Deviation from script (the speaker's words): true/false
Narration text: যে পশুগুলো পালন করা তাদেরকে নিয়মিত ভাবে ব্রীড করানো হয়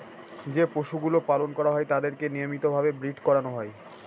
true